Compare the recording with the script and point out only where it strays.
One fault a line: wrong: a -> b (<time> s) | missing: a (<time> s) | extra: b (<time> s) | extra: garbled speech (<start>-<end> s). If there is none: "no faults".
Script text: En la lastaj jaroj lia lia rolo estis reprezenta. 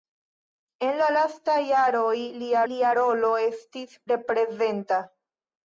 no faults